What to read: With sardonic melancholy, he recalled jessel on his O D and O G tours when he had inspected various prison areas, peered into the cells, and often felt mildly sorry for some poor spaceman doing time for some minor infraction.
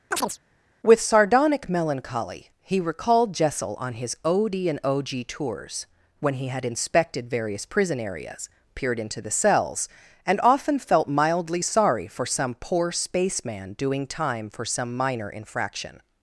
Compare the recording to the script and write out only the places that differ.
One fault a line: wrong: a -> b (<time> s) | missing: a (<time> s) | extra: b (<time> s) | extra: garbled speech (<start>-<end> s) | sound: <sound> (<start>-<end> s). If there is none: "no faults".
sound: chirp (0.1-0.4 s)